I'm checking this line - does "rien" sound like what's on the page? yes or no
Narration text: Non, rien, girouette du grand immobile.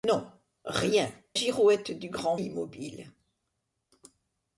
yes